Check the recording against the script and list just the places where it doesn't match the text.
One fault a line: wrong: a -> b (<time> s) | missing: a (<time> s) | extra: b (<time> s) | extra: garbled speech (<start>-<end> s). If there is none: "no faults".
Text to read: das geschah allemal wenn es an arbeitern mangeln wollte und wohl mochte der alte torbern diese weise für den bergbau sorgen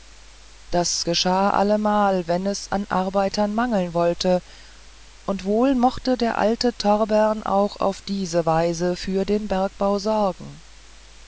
extra: auch auf (7.4 s)